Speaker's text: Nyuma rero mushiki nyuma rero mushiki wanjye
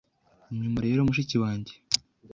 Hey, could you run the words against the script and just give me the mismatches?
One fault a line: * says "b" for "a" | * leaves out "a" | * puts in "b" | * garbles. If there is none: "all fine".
* leaves out "nyuma rero mushiki"